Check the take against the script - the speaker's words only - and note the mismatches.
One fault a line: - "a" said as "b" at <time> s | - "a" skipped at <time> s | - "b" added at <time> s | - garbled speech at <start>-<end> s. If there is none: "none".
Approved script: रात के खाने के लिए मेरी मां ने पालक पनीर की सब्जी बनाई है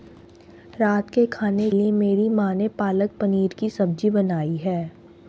- "के" skipped at 1.7 s